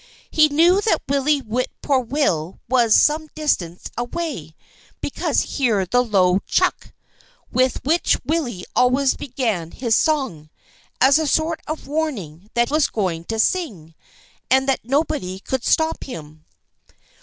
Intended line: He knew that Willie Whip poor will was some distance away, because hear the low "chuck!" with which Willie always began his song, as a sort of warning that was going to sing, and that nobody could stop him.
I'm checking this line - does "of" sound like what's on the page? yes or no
yes